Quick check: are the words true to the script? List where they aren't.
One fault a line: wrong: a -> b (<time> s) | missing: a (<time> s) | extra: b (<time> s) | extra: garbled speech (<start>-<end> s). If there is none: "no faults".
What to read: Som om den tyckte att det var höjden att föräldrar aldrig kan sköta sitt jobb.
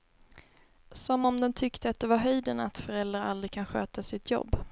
no faults